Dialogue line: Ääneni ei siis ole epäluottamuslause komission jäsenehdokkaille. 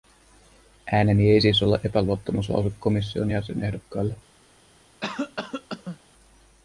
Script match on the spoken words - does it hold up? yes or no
yes